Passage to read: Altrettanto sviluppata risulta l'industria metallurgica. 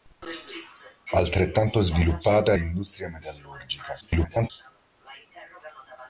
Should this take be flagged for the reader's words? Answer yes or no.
yes